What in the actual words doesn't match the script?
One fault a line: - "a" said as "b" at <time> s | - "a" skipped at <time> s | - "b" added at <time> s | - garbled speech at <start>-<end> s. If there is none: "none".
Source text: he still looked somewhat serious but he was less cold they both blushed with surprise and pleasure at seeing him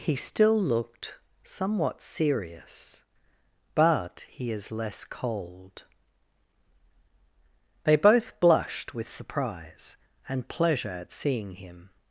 - "was" said as "is" at 4.5 s